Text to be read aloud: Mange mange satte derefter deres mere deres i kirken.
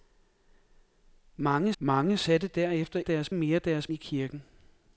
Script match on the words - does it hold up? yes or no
yes